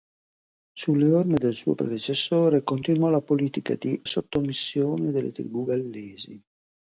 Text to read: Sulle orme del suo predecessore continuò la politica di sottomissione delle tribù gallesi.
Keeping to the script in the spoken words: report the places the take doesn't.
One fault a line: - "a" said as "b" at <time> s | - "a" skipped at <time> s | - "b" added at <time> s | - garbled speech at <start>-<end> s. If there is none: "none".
none